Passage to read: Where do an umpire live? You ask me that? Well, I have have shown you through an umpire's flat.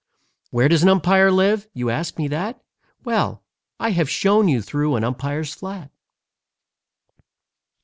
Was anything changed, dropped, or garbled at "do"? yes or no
yes